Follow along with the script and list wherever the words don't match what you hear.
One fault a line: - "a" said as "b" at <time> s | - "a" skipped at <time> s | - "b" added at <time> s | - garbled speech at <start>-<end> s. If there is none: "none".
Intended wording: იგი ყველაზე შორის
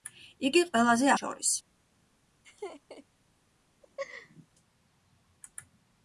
none